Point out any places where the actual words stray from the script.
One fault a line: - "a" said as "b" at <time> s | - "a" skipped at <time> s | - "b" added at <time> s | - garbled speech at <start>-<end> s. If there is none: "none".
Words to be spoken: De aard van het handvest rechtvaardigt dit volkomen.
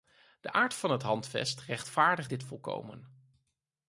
none